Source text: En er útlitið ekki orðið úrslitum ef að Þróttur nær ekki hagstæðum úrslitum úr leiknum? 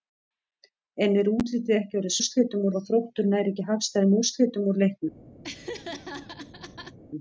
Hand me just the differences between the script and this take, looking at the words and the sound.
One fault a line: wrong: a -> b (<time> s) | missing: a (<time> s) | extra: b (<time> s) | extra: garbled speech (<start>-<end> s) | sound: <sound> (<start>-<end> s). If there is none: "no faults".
sound: laugh (5.4-7.0 s)